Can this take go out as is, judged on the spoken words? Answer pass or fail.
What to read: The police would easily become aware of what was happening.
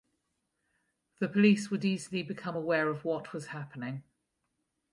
pass